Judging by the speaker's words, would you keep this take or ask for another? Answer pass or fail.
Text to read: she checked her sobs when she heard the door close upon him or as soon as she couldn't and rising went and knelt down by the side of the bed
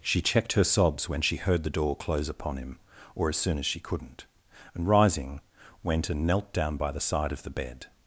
pass